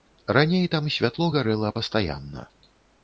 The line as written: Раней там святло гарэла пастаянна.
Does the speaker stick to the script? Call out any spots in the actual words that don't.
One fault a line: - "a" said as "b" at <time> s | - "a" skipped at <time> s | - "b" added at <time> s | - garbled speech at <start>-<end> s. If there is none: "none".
none